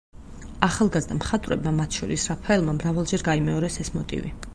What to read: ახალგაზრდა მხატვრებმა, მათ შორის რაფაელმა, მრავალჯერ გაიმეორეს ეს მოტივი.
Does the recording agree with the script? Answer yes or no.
yes